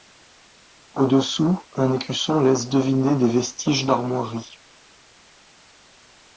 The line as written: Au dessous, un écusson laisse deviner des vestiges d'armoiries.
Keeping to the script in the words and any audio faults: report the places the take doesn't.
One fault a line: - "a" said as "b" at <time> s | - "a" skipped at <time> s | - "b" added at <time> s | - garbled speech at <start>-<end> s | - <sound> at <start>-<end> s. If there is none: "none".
none